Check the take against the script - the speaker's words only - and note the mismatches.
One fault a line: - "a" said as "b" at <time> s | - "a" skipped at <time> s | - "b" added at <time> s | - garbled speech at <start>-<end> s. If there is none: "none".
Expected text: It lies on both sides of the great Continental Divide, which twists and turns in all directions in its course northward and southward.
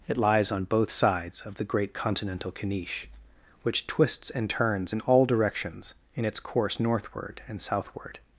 - "Divide" said as "Caniche" at 2.5 s